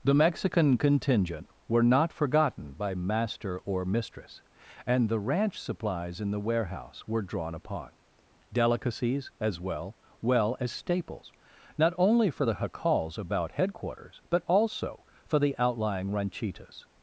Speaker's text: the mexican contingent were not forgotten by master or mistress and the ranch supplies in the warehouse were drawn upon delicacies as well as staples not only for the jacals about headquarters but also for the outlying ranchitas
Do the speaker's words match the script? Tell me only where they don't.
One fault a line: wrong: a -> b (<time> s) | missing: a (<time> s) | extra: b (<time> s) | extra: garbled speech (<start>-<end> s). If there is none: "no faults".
extra: well (10.2 s)